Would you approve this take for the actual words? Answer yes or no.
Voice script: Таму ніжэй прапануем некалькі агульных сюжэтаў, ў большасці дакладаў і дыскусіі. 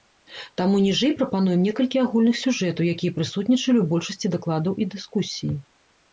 no